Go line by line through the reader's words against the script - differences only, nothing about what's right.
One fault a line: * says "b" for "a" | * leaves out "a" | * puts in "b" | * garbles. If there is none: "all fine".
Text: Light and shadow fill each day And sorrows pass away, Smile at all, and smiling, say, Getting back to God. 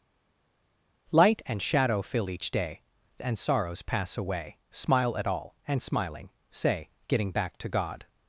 all fine